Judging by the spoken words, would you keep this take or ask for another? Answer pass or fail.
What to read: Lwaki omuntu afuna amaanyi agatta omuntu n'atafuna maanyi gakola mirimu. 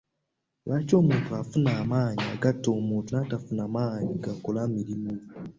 pass